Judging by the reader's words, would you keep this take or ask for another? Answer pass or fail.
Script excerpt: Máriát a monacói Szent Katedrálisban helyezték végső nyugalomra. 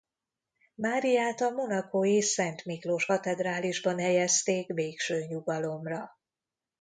fail